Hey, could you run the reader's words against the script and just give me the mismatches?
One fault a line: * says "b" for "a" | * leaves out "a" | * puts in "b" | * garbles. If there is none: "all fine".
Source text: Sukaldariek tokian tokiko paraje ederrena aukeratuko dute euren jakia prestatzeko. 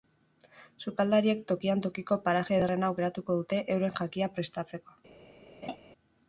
all fine